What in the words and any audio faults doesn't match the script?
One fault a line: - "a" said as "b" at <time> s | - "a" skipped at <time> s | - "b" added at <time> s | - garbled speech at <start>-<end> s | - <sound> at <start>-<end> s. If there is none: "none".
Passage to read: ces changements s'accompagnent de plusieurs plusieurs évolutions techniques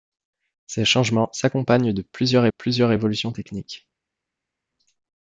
none